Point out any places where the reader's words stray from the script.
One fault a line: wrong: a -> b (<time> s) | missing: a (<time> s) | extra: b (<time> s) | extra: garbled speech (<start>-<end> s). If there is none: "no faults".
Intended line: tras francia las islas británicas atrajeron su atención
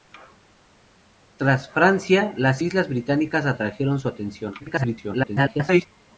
extra: garbled speech (4.6-5.9 s)